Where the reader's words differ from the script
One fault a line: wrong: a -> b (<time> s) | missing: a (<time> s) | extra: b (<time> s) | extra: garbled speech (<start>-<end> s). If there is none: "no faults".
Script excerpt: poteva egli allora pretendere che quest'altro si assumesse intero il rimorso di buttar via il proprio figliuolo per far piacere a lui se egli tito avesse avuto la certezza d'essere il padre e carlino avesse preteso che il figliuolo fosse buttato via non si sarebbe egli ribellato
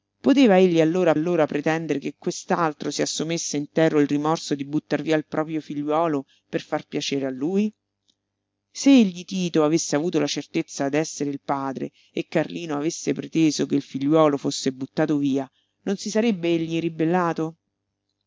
extra: allora (1.1 s)